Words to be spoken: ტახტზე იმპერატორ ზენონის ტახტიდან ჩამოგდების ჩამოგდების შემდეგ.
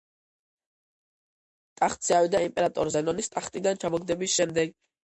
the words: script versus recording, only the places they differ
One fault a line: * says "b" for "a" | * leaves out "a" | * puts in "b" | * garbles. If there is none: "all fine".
* puts in "ავიდა"
* leaves out "ჩამოგდების"